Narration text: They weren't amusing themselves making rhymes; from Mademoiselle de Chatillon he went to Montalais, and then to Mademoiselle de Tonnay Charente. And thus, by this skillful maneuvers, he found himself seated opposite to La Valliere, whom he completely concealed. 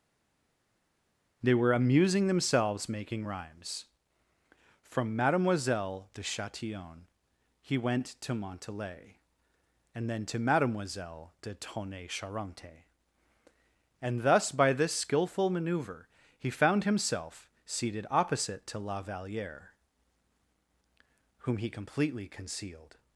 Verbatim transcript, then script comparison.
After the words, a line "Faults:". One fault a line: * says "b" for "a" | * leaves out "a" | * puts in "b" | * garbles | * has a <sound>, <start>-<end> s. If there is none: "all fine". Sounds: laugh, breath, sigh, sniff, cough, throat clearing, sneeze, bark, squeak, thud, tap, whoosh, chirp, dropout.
They were amusing themselves making rhymes; from Mademoiselle de Chatillon he went to Montalais, and then to Mademoiselle de Tonnay Charente. And thus, by this skillful maneuver, he found himself seated opposite to La Valliere, whom he completely concealed.
Faults:
* says "were" for "weren't"
* says "maneuver" for "maneuvers"